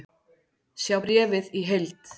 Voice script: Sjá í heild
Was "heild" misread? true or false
false